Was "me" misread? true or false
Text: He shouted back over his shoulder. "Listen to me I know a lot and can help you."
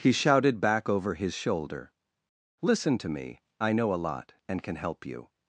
false